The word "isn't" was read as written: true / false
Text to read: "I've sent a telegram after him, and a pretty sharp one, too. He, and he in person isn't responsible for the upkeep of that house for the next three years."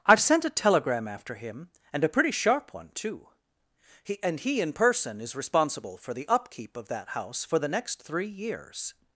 false